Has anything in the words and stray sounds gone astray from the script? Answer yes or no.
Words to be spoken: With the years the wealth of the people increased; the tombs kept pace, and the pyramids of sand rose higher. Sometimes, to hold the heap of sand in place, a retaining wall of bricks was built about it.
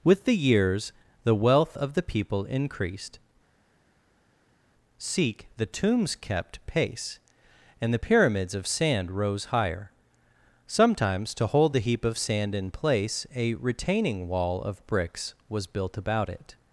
yes